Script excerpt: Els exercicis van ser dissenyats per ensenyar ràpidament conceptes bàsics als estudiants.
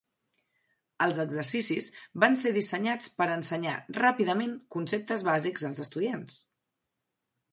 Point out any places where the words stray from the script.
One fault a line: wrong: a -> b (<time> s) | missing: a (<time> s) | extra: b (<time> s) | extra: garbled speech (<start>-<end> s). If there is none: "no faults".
no faults